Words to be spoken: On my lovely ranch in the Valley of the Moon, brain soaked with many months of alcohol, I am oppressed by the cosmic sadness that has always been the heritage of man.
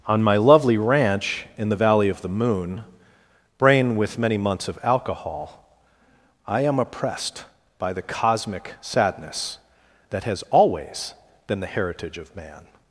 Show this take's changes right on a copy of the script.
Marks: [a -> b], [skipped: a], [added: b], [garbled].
On my lovely ranch in the Valley of the Moon, brain [skipped: soaked] with many months of alcohol, I am oppressed by the cosmic sadness that has always been the heritage of man.